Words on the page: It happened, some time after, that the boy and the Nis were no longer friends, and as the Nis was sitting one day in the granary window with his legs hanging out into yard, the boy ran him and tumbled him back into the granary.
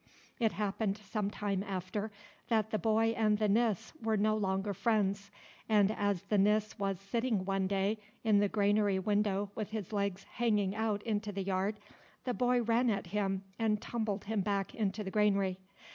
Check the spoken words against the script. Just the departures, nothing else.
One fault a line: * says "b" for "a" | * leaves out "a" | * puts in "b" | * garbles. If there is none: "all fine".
* puts in "the"
* puts in "at"